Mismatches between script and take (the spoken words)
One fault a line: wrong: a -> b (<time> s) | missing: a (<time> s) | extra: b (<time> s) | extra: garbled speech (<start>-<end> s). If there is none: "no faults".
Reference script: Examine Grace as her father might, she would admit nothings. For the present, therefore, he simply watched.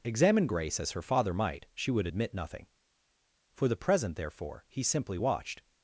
wrong: nothings -> nothing (2.3 s)